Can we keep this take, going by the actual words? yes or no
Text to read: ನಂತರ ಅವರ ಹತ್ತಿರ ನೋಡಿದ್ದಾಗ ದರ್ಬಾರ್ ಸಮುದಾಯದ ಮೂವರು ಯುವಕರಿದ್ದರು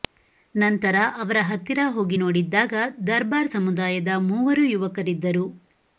no